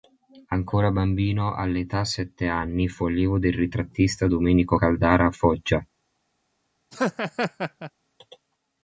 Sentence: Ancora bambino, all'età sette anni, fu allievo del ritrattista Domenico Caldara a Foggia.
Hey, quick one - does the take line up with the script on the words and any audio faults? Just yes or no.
no